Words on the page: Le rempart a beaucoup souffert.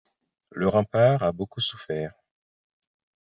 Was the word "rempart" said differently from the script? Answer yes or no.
no